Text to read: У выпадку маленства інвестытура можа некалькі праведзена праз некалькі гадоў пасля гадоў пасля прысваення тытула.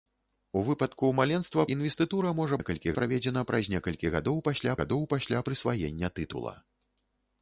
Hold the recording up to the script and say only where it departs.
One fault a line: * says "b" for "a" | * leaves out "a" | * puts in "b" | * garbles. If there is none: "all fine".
all fine